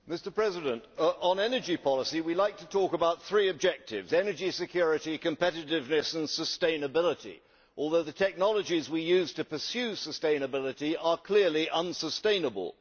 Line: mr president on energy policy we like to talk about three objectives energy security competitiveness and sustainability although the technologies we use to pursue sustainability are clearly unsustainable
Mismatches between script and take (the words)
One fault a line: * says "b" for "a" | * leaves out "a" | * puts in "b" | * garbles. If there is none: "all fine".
all fine